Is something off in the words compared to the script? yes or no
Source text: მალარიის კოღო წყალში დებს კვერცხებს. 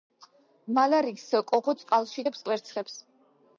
no